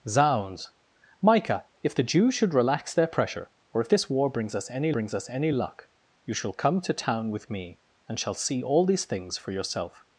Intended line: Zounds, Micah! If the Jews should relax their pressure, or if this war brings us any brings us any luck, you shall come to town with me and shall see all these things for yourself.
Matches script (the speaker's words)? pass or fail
pass